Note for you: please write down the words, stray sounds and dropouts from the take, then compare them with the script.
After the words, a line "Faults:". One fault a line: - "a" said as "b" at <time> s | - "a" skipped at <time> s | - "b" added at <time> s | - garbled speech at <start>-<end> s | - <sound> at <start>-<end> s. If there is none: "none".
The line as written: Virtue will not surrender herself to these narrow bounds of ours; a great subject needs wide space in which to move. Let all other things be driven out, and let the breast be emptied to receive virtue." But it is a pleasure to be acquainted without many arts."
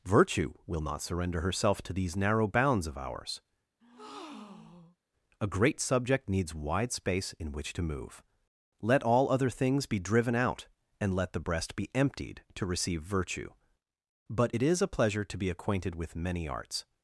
Virtue will not surrender herself to these narrow bounds of ours; a great subject needs wide space in which to move. Let all other things be driven out, and let the breast be emptied to receive virtue." But it is a pleasure to be acquainted with many arts."
Faults:
- breath at 3.8-5.0 s
- "without" said as "with" at 15.9 s